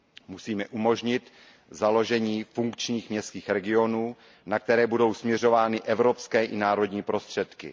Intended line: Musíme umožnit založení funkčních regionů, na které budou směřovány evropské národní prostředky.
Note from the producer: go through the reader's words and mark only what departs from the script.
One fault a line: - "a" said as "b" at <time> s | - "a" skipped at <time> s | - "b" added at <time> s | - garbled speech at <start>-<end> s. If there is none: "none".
- "městských" added at 3.1 s
- "i" added at 6.4 s